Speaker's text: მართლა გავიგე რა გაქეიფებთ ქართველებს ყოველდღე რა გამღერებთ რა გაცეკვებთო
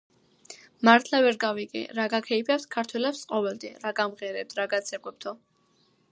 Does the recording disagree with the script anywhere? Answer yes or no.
yes